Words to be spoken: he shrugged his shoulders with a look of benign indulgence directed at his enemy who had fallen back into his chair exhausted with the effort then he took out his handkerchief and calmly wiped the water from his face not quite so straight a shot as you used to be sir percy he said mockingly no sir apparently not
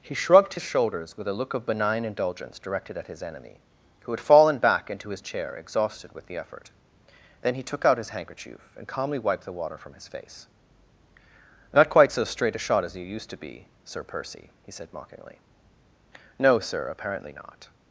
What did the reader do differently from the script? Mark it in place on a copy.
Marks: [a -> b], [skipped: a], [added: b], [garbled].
he shrugged his shoulders with a look of benign indulgence directed at his enemy who had fallen back into his chair exhausted with the effort then he took out his handkerchief and calmly wiped the water from his face not quite so straight a shot as you used to be sir percy he said mockingly no sir apparently not